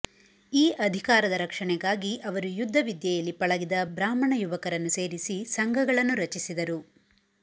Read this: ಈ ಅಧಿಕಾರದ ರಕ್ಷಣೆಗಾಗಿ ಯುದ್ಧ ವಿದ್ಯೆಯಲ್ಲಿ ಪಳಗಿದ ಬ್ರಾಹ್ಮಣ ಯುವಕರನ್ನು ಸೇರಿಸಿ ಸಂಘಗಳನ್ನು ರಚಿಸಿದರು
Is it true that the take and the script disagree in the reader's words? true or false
true